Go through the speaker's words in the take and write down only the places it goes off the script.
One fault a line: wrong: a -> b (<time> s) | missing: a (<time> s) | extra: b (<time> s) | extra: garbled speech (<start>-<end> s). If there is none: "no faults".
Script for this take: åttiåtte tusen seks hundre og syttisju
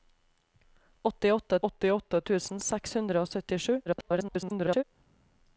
extra: åttiåtte (1.7 s)
extra: garbled speech (3.9-4.8 s)